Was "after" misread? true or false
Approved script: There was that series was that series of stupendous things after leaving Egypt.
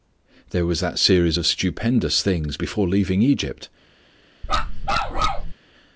true